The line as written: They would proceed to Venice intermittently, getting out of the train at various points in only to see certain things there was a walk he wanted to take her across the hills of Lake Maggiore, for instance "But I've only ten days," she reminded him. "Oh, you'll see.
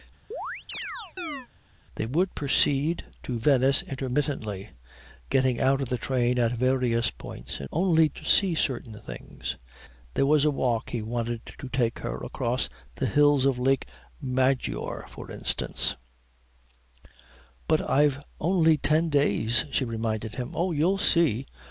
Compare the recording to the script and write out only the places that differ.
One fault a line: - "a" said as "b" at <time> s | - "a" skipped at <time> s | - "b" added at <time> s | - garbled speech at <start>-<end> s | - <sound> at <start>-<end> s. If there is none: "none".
- chirp at 0.3-1.5 s